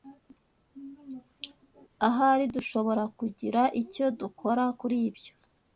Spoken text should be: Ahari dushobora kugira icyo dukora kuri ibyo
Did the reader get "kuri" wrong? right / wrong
right